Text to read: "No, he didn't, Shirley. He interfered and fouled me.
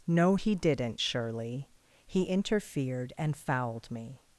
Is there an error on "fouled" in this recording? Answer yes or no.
no